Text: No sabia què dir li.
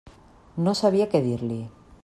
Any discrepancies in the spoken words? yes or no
no